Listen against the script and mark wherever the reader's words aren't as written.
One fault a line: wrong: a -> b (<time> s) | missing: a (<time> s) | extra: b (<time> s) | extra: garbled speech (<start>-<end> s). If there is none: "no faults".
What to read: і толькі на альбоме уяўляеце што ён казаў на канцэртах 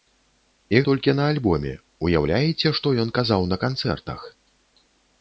no faults